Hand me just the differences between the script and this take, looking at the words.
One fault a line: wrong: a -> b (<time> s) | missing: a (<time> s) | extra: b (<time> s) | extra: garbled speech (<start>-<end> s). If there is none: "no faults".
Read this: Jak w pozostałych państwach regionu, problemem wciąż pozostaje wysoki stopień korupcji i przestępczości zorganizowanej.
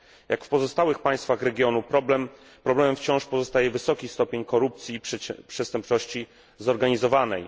no faults